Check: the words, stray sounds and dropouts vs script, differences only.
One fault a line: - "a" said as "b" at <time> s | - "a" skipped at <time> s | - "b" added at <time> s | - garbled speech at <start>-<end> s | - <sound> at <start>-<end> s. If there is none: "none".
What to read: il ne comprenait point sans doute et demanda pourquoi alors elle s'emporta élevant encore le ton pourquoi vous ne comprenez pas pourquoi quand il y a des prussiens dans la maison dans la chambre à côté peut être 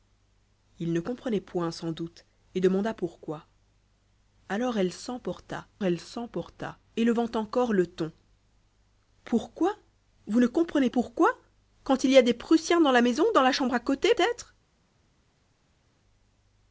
- "elle s'emporta" added at 5.8 s
- "pas" skipped at 10.9 s
- "peut" skipped at 14.1 s